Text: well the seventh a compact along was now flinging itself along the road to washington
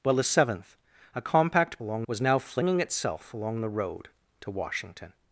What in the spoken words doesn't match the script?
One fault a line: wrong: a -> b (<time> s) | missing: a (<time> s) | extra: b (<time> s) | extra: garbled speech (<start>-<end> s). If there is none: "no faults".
no faults